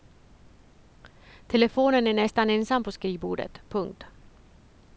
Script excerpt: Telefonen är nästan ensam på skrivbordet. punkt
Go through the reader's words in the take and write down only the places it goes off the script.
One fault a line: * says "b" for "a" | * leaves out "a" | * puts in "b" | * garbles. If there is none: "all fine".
all fine